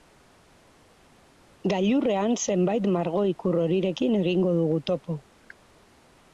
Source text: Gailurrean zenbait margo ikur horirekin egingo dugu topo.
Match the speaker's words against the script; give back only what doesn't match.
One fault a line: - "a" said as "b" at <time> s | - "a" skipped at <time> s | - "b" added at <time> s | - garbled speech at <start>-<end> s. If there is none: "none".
none